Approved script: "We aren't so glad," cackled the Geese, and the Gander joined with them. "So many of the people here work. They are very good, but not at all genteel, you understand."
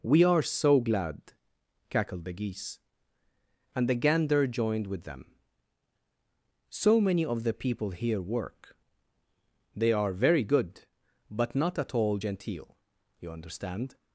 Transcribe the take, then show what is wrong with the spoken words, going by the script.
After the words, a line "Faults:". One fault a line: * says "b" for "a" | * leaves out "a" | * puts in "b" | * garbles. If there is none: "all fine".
"We are so glad," cackled the Geese, and the Gander joined with them. "So many of the people here work. They are very good, but not at all genteel, you understand."
Faults:
* says "are" for "aren't"